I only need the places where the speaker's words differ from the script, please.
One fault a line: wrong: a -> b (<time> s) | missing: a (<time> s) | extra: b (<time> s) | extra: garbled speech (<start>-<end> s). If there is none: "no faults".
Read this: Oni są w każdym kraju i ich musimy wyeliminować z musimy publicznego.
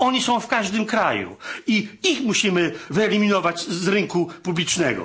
wrong: musimy -> rynku (3.9 s)